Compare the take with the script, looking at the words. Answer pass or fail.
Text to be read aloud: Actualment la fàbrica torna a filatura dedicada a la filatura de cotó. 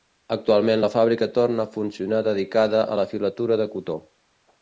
fail